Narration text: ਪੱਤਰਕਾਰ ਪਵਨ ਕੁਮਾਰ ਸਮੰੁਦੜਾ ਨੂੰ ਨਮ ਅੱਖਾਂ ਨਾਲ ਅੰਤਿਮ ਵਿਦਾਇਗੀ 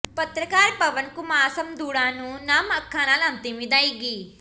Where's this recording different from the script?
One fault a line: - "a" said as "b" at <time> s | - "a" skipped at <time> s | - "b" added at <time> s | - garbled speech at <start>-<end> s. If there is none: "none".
none